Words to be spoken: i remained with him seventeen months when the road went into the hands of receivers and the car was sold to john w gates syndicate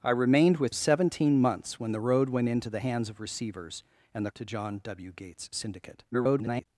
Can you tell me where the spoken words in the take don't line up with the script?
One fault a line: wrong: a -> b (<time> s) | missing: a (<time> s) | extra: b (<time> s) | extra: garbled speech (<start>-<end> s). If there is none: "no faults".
missing: him (0.8 s)
missing: car was sold (4.3 s)
extra: garbled speech (6.1-6.7 s)